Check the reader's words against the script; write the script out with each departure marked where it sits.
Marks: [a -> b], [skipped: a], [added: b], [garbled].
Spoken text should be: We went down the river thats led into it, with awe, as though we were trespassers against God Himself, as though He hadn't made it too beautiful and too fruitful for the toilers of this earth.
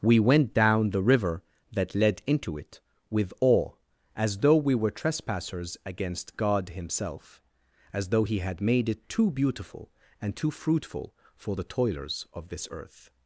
We went down the river [thats -> that] led into it, with awe, as though we were trespassers against God Himself, as though He [hadn't -> had] made it too beautiful and too fruitful for the toilers of this earth.